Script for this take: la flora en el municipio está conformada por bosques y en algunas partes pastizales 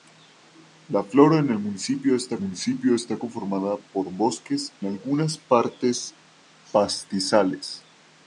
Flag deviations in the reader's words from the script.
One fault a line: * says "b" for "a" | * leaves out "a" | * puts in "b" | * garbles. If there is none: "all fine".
* puts in "municipio está"
* leaves out "y en"